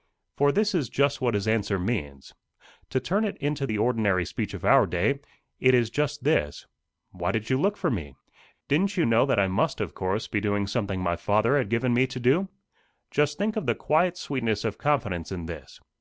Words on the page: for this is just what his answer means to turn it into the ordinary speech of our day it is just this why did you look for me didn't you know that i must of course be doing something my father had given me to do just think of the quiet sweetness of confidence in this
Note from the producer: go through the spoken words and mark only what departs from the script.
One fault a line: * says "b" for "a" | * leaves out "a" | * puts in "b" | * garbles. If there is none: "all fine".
all fine